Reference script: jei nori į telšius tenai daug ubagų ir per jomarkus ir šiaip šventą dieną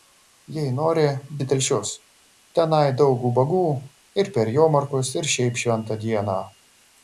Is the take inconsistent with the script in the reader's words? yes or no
no